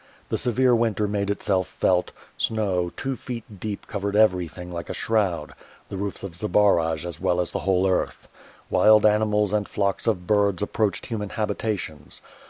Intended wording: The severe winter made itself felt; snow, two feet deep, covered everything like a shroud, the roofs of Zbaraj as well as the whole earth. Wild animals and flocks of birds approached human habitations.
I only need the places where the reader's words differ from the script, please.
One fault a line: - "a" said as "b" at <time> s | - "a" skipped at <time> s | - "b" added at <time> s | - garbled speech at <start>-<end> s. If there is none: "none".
none